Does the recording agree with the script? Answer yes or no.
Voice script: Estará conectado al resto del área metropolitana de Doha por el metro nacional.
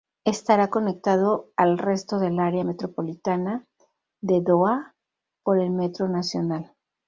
yes